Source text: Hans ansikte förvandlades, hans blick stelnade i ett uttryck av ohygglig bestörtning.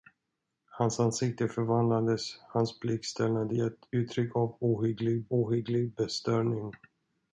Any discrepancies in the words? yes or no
yes